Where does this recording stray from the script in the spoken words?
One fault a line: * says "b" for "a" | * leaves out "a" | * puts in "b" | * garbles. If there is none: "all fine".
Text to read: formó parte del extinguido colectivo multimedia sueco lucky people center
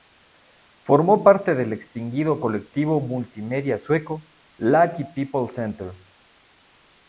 all fine